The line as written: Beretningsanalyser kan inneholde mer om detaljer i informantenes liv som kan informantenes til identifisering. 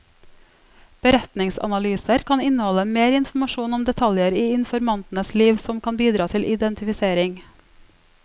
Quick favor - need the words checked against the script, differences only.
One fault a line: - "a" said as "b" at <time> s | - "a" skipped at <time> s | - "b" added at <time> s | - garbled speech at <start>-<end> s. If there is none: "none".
- "informasjon" added at 3.1 s
- "informantenes" said as "bidra" at 6.0 s